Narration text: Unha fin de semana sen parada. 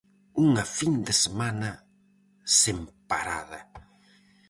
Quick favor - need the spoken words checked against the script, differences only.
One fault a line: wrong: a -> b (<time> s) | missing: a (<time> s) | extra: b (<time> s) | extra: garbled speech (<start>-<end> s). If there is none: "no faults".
no faults